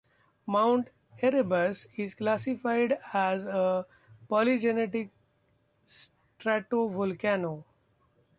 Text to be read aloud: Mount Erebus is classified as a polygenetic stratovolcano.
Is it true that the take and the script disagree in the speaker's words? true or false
false